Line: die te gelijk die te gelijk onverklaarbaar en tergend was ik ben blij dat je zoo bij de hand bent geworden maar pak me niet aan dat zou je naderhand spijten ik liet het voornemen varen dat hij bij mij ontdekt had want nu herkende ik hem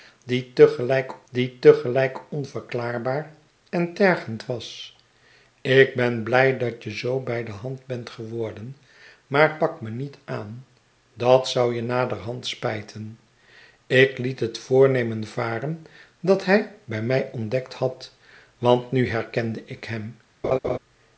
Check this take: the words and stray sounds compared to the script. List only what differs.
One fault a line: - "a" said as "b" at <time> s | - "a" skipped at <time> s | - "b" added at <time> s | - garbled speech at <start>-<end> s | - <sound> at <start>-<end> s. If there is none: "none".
- laugh at 20.4-20.8 s